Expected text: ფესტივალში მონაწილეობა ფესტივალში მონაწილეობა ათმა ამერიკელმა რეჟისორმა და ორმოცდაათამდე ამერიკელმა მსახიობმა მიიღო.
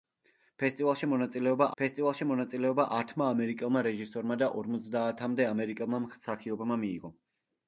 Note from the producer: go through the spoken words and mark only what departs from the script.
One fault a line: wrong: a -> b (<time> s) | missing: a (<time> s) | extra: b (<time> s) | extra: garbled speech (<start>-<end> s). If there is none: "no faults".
no faults